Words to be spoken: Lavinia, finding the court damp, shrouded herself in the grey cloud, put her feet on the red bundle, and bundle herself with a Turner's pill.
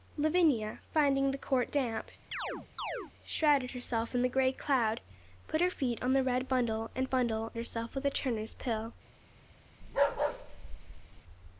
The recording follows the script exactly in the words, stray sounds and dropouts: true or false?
false